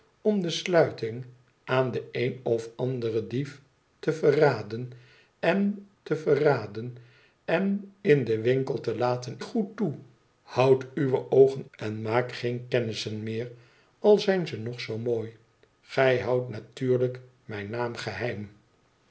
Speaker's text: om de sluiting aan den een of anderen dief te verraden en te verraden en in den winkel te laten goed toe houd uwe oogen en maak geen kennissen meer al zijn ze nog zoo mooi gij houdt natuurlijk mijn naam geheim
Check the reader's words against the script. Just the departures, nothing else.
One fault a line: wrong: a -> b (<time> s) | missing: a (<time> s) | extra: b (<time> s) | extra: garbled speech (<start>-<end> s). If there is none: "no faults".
no faults